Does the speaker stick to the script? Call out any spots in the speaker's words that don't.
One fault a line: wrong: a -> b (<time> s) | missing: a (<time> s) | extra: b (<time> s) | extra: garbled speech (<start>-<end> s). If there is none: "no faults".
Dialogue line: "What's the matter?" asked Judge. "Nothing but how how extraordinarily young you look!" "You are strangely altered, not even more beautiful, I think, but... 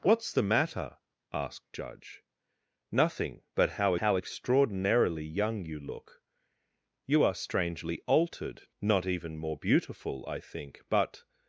no faults